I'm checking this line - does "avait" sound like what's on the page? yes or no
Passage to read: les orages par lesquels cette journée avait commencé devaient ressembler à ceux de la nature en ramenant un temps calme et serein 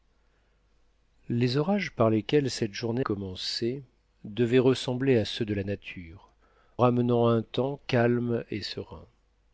no